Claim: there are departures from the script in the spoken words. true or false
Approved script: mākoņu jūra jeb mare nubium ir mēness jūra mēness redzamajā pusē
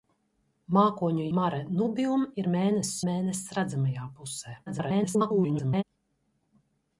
true